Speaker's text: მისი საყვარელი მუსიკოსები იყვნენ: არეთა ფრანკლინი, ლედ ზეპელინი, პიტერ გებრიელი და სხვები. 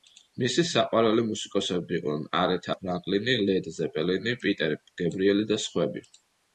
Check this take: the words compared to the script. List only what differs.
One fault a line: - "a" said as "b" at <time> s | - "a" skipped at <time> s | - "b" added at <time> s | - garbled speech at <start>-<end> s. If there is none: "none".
none